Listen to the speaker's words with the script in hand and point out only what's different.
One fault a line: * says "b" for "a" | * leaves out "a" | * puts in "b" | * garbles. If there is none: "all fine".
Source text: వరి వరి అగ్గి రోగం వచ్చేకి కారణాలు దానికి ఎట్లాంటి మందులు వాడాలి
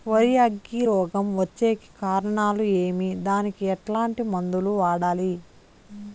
* leaves out "వరి"
* puts in "ఏమి"